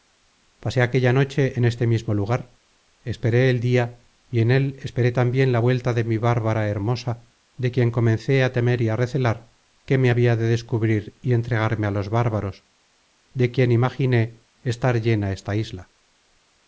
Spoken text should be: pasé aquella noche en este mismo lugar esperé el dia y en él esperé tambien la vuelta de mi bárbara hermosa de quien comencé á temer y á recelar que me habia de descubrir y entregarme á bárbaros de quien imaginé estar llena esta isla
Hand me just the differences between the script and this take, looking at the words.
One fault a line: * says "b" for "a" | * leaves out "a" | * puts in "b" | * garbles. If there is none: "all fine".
* puts in "los"